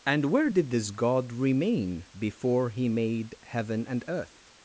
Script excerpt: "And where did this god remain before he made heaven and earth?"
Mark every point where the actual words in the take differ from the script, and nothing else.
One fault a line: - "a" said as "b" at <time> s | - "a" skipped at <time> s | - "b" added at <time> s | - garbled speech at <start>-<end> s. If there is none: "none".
none